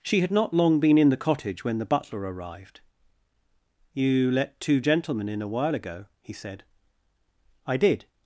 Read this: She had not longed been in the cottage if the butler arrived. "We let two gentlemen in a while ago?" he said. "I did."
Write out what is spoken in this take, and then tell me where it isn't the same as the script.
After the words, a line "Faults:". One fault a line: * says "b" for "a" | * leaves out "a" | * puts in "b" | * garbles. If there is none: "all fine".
She had not long been in the cottage when the butler arrived. "You let two gentlemen in a while ago?" he said. "I did."
Faults:
* says "long" for "longed"
* says "when" for "if"
* says "You" for "We"